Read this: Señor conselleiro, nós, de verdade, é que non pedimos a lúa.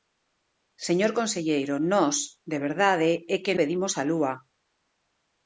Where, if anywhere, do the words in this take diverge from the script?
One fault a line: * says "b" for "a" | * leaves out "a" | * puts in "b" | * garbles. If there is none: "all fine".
* leaves out "non"